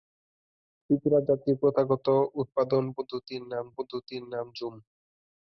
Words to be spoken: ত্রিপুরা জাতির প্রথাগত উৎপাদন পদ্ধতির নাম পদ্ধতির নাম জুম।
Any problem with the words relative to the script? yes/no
no